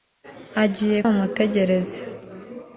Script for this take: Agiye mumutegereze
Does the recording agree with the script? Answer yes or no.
yes